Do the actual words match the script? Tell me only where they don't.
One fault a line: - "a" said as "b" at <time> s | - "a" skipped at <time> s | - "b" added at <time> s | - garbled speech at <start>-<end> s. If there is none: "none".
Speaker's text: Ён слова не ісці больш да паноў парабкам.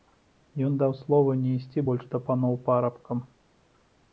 - "даў" added at 0.8 s